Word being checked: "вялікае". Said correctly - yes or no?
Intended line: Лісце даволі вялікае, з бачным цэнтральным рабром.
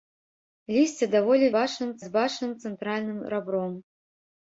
no